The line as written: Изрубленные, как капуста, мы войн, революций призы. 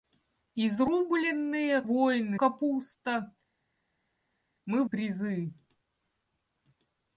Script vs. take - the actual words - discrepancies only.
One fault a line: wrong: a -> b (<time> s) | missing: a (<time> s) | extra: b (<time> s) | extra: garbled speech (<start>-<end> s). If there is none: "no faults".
wrong: как -> войн (1.8 s)
missing: войн революций (4.8 s)